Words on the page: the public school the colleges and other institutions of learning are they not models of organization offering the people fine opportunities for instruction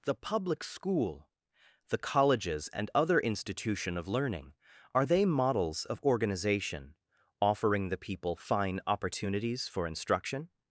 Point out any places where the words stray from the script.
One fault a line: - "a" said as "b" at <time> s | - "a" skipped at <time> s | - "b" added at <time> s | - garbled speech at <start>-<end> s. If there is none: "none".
- "institutions" said as "institution" at 3.2 s
- "not" skipped at 5.2 s